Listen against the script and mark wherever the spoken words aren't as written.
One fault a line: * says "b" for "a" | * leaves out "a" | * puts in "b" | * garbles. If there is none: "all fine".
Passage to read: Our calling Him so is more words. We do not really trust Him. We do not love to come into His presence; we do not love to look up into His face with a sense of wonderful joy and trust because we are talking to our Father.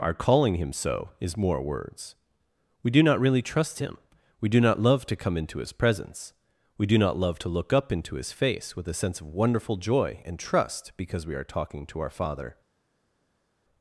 all fine